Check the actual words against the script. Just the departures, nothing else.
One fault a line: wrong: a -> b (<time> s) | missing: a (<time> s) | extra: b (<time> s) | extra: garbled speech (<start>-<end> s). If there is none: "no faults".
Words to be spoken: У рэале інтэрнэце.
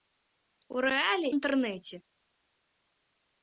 no faults